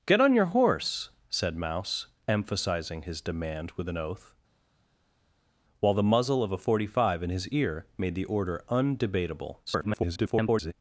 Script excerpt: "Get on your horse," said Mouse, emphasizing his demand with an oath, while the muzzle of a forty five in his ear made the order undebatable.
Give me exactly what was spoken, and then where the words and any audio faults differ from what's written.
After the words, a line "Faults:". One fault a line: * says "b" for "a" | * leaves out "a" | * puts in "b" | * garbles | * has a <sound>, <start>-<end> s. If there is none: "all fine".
"Get on your horse," said Mouse, emphasizing his demand with an oath, while the muzzle of a forty five in his ear made the order undebatable. [garbled]
Faults:
* garbles